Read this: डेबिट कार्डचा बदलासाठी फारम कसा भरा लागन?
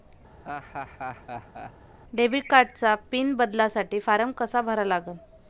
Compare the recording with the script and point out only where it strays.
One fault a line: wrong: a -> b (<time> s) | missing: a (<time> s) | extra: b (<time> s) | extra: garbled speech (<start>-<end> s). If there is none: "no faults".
extra: पिन (3.1 s)